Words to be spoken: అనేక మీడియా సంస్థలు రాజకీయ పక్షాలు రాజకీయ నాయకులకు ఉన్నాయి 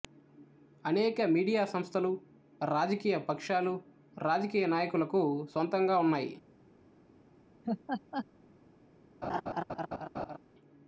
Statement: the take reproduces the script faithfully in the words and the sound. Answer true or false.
false